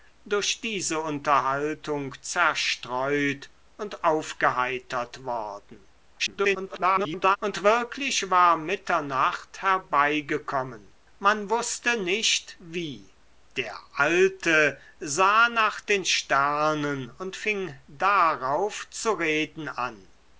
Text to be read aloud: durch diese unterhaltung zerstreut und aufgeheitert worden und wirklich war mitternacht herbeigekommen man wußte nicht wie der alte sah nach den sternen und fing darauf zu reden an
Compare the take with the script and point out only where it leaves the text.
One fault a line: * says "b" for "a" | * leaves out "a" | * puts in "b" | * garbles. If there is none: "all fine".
* garbles